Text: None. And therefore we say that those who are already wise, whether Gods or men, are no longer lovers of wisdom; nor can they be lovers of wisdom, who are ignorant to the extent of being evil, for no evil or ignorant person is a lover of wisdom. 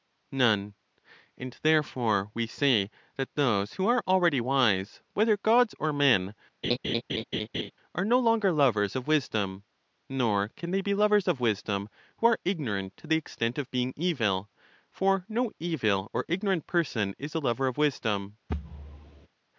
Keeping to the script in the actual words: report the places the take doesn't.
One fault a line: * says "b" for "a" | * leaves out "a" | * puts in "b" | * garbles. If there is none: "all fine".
all fine